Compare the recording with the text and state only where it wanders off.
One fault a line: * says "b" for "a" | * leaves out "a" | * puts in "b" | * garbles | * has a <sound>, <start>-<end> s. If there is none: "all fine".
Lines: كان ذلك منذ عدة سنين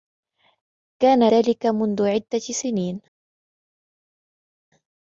all fine